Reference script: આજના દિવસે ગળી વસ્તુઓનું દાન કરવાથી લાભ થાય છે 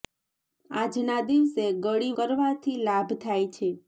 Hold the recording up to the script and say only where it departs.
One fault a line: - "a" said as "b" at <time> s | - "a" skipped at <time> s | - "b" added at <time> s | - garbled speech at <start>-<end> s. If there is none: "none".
- "વસ્તુઓનું દાન" skipped at 2.1 s